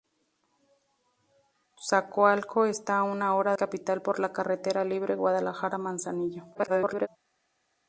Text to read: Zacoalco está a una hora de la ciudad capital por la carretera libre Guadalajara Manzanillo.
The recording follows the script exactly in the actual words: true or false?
false